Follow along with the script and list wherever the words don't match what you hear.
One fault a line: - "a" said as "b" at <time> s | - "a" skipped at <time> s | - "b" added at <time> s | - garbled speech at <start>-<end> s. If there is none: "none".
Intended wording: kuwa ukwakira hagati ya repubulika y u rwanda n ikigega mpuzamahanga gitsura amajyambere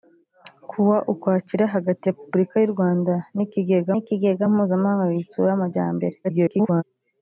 - "ya" skipped at 2.0 s
- "ikigega" added at 4.0 s
- garbled speech at 6.2-6.8 s